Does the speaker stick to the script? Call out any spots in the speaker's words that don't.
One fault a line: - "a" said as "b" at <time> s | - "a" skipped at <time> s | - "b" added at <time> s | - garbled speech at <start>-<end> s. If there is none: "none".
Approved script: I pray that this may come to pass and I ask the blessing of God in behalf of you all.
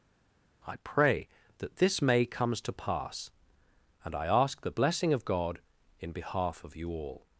- "come" said as "comes" at 2.2 s